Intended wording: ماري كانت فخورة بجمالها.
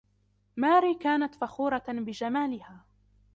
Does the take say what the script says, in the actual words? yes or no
yes